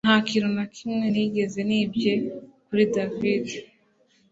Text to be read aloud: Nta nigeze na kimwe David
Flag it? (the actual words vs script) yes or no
yes